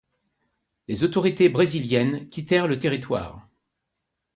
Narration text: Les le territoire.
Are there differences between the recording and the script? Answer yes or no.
yes